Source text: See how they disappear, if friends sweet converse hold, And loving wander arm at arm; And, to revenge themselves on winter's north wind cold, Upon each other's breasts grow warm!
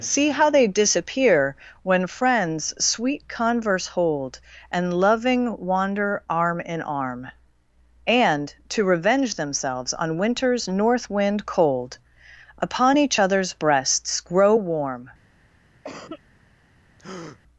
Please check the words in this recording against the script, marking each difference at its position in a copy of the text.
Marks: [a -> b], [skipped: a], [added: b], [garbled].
See how they disappear, [if -> when] friends sweet converse hold, And loving wander arm [at -> in] arm; And, to revenge themselves on winter's north wind cold, Upon each other's breasts grow warm!